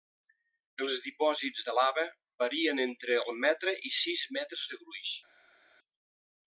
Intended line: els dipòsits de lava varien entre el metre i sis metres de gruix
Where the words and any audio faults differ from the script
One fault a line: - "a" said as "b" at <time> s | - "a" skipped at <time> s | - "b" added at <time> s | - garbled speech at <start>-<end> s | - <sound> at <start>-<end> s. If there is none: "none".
none